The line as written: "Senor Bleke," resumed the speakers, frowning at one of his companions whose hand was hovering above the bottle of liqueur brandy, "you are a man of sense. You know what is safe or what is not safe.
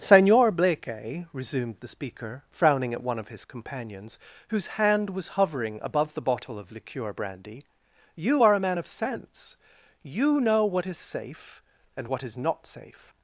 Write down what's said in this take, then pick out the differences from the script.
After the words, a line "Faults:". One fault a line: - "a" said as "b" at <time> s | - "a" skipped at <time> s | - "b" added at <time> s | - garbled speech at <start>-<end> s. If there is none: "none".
"Senor Bleke," resumed the speaker, frowning at one of his companions whose hand was hovering above the bottle of liqueur brandy, "you are a man of sense. You know what is safe and what is not safe.
Faults:
- "speakers" said as "speaker" at 1.9 s
- "or" said as "and" at 11.9 s